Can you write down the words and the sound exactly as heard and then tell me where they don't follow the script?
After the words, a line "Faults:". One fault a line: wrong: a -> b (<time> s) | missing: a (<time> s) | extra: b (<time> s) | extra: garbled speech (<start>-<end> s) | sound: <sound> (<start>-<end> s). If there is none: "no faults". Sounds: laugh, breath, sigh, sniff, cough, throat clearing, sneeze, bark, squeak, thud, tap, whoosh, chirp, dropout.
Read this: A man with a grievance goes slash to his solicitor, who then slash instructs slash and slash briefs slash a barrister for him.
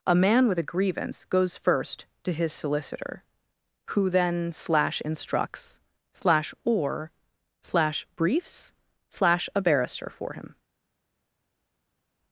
A man with a grievance goes first to his solicitor, who then slash instructs slash or slash briefs slash a barrister for him.
Faults:
wrong: slash -> first (1.6 s)
wrong: and -> or (6.7 s)